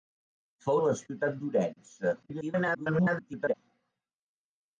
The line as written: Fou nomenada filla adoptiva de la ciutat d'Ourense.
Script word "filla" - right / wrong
wrong